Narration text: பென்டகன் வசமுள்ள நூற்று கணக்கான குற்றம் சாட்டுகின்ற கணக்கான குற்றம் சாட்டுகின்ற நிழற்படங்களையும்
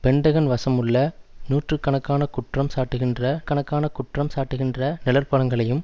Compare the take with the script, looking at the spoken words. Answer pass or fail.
pass